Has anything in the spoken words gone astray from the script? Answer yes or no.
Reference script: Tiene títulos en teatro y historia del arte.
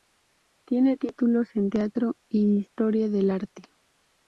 no